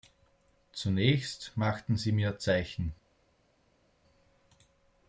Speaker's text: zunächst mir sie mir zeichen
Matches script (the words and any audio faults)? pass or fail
fail